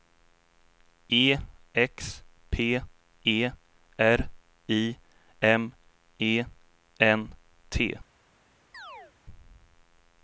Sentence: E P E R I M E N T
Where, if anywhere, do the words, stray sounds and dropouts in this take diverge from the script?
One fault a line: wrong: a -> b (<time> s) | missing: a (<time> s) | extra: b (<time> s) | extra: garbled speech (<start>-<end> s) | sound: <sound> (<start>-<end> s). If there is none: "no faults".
extra: X (1.8 s)
sound: chirp (8.7-9.1 s)